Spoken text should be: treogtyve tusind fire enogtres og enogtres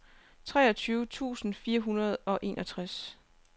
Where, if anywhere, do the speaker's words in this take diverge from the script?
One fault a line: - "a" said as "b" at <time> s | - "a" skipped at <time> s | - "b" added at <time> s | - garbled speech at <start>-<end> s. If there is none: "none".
- "enogtres" said as "hundrede" at 1.8 s